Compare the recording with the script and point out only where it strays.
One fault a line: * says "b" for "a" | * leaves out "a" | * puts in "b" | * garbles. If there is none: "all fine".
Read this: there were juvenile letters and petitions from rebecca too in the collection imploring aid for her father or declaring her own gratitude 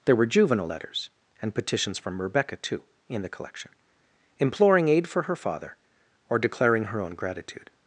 all fine